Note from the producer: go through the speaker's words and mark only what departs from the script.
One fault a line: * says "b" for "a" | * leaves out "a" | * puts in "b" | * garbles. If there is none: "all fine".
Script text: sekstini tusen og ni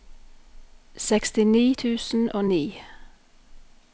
all fine